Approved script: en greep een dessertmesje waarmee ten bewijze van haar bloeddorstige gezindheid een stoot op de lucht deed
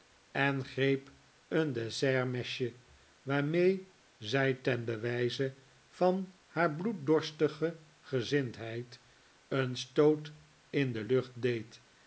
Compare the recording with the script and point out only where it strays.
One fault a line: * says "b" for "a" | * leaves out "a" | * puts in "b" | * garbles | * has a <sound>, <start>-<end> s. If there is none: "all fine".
* puts in "zij"
* says "in" for "op"